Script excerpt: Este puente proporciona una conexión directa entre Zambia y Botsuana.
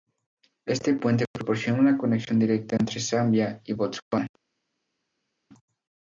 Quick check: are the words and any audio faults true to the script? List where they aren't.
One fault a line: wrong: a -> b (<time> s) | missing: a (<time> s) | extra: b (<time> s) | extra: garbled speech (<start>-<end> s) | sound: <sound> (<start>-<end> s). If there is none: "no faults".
no faults